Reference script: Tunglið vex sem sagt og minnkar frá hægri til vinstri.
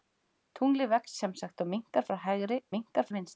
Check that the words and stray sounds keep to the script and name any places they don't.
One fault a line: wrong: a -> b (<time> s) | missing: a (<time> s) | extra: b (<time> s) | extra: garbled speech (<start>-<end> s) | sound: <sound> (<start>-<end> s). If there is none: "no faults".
wrong: til -> minnkar (2.7 s)